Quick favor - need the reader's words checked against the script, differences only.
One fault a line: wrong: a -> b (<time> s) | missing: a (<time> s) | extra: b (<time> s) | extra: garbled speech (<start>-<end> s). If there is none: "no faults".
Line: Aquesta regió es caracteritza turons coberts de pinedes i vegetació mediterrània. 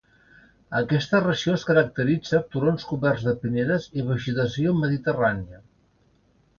no faults